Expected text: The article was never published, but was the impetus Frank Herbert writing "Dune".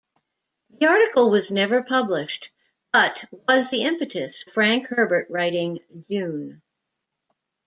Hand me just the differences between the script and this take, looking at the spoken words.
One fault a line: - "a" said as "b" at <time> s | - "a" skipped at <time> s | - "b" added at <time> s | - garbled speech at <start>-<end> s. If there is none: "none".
none